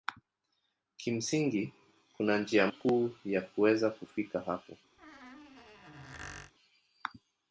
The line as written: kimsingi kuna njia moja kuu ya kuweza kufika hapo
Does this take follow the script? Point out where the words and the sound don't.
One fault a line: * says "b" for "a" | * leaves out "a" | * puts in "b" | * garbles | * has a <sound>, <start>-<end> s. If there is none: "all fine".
* leaves out "moja"
* has a squeak, 5.0-6.5 s